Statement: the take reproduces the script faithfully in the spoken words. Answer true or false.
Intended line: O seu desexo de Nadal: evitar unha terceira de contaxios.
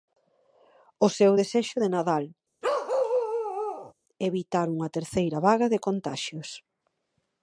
false